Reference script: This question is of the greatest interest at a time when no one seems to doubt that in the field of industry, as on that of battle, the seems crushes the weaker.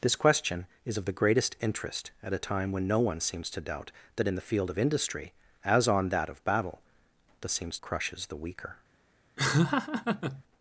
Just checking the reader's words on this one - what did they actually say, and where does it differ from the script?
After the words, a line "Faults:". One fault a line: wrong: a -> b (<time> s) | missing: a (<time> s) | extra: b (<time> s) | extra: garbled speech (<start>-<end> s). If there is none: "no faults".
This question is of the greatest interest at a time when no one seems to doubt that in the field of industry, as on that of battle, the seems crushes the weaker.
Faults:
no faults